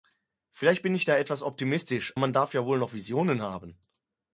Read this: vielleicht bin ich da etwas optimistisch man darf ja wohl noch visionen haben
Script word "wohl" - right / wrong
right